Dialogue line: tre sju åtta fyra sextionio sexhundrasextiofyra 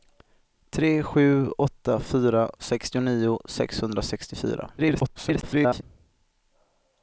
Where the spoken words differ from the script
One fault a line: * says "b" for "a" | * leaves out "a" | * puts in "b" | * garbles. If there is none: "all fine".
* garbles